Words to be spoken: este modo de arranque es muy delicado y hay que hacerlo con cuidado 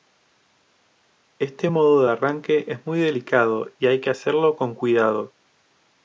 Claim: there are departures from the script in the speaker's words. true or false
false